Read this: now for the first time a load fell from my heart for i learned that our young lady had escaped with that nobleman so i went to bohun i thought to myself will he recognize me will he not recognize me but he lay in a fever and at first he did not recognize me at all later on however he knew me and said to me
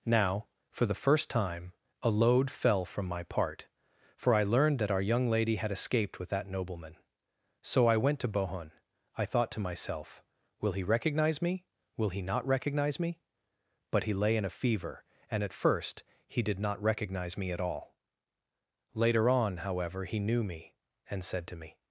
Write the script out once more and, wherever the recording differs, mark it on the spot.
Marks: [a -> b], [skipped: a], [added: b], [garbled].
now for the first time a load fell from my [heart -> part] for i learned that our young lady had escaped with that nobleman so i went to bohun i thought to myself will he recognize me will he not recognize me but he lay in a fever and at first he did not recognize me at all later on however he knew me and said to me